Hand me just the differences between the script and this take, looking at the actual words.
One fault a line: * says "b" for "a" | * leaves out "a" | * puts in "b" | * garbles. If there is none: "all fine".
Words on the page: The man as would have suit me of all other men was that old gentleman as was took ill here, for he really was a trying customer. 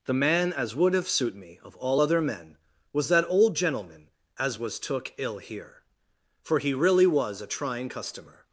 all fine